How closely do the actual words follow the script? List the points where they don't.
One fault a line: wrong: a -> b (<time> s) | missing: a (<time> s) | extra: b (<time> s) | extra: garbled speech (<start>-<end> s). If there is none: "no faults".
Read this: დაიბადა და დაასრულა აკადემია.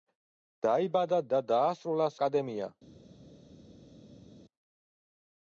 no faults